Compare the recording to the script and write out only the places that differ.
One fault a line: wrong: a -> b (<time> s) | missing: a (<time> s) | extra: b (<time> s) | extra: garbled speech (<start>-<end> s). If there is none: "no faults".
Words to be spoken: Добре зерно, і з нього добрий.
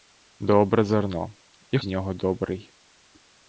no faults